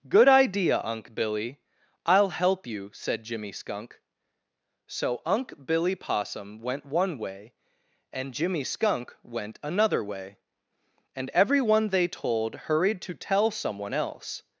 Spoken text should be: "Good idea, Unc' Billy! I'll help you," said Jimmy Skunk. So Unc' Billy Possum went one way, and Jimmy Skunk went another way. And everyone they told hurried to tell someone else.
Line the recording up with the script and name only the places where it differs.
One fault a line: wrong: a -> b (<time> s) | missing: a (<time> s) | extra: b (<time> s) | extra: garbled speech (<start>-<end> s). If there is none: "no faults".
no faults